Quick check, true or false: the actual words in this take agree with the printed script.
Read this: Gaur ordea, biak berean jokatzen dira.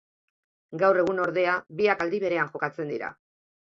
false